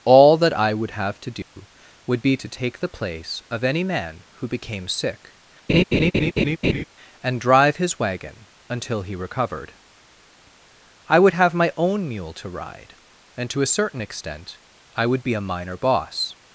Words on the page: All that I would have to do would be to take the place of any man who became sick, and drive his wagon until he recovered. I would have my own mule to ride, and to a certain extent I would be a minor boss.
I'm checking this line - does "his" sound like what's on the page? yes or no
yes